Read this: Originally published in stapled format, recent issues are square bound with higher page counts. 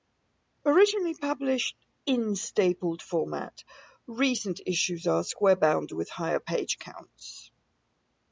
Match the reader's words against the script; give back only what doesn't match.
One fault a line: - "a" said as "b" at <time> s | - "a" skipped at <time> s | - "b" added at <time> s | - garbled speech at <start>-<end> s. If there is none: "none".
none